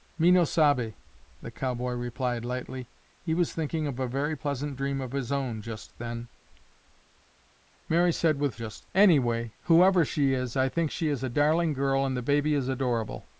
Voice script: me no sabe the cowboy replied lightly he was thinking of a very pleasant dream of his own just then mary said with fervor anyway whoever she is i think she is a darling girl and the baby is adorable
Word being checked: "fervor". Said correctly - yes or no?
no